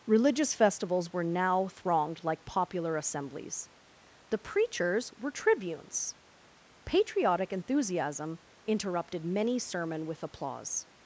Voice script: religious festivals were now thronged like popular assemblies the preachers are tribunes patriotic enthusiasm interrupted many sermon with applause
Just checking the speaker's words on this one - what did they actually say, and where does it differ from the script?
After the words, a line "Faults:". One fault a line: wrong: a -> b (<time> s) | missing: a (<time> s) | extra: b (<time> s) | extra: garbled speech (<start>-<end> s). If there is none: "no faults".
religious festivals were now thronged like popular assemblies the preachers were tribunes patriotic enthusiasm interrupted many sermon with applause
Faults:
wrong: are -> were (5.2 s)